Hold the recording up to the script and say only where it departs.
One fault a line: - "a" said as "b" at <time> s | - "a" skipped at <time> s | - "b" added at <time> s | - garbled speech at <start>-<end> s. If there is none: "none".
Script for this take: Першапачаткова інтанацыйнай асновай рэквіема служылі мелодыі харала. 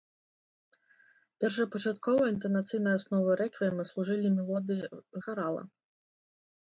none